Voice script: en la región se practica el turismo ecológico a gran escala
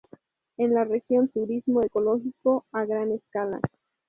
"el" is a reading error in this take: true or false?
true